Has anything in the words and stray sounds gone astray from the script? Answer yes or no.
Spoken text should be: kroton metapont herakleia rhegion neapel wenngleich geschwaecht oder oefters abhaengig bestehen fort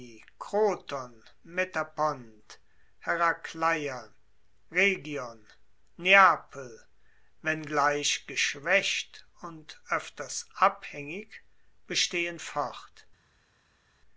yes